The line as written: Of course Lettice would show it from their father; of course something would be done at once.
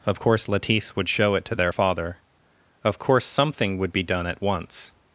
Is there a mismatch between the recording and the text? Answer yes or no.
yes